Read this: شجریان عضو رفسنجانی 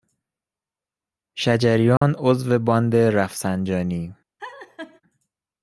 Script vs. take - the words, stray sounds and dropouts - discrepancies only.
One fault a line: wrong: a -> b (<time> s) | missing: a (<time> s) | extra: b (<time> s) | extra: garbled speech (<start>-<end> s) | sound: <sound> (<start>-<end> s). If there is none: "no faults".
sound: dropout (2.0-2.0 s)
extra: باند (2.6 s)
sound: laugh (4.4-5.0 s)